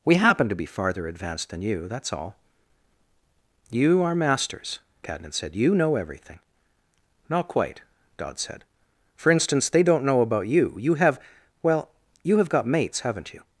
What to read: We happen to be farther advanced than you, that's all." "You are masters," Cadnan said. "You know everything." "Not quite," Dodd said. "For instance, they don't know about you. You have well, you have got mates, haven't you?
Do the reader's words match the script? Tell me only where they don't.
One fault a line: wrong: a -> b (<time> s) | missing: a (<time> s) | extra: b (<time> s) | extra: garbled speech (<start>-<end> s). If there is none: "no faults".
no faults